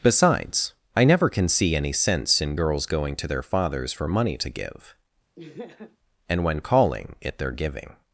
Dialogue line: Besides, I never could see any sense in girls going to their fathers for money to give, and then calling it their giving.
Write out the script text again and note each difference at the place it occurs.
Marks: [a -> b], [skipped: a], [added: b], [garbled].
Besides, I never [could -> can] see any sense in girls going to their fathers for money to give, and [then -> when] calling it their giving.